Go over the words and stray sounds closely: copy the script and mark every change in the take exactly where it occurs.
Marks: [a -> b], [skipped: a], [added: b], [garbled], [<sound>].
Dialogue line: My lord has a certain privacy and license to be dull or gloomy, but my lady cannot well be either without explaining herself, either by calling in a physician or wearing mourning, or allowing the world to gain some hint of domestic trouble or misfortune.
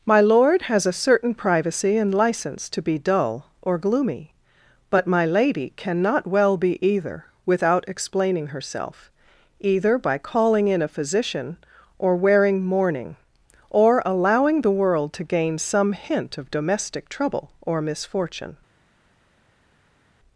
My lord has a certain privacy and license to be dull or gloomy, but my lady cannot well be either without explaining herself, either by calling in a physician or wearing mourning, or allowing the world to gain some hint of domestic trouble or misfortune.